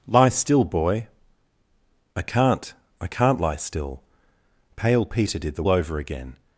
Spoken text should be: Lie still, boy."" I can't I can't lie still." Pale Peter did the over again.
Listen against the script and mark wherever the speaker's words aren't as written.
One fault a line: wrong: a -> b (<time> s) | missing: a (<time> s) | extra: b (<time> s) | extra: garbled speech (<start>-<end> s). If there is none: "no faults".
no faults